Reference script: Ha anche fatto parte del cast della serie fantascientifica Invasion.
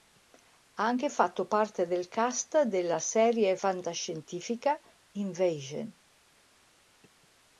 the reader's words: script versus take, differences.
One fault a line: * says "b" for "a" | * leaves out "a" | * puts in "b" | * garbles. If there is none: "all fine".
all fine